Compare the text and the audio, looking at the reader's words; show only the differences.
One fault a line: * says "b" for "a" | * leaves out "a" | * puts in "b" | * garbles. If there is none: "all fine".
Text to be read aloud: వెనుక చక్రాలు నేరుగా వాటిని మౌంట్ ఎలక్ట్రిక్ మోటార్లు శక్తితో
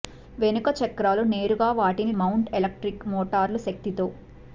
all fine